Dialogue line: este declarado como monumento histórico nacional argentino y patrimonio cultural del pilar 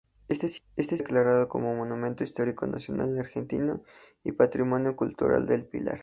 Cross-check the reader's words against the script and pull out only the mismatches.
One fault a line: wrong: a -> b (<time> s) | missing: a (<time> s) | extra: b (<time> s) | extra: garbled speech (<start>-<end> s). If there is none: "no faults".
no faults